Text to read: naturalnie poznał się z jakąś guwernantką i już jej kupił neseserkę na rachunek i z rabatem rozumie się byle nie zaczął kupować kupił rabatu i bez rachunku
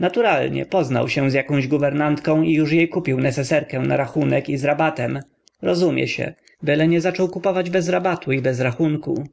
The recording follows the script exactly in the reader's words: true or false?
false